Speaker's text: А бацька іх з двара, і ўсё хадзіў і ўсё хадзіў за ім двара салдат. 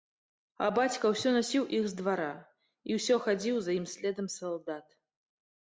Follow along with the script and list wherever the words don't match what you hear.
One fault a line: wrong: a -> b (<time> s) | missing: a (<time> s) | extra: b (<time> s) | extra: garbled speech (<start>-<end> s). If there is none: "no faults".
extra: ўсё насіў (1.1 s)
missing: і ўсё хадзіў (3.6 s)
wrong: двара -> следам (4.0 s)